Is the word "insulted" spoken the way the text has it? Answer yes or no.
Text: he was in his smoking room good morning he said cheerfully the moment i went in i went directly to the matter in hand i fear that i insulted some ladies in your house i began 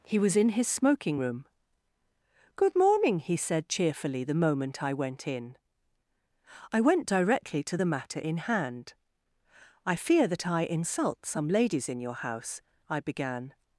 no